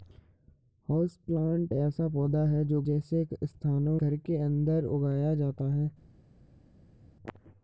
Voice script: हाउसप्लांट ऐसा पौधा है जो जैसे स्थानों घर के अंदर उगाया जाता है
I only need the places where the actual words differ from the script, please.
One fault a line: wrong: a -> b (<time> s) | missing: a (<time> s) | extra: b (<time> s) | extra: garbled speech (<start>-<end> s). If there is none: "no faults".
no faults